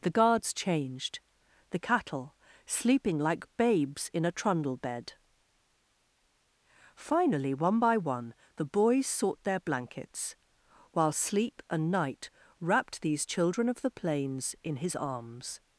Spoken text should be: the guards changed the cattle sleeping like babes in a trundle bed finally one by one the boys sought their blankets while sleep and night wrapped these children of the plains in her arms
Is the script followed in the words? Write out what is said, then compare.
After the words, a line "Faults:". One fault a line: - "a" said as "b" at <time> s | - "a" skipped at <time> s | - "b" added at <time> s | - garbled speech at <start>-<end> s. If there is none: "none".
the guards changed the cattle sleeping like babes in a trundle bed finally one by one the boys sought their blankets while sleep and night wrapped these children of the plains in his arms
Faults:
- "her" said as "his" at 14.8 s